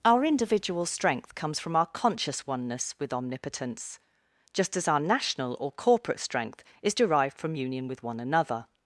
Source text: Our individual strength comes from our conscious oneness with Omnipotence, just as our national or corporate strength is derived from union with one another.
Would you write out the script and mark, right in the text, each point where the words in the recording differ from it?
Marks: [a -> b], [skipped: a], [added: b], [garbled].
Our individual strength comes from our conscious oneness with Omnipotence, just as our national or corporate strength is derived from union with one another.